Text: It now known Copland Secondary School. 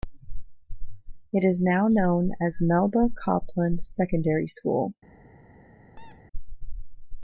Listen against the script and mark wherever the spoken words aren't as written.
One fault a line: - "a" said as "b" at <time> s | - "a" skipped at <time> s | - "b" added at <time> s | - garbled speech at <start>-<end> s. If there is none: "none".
- "is" added at 1.5 s
- "as Melba" added at 2.4 s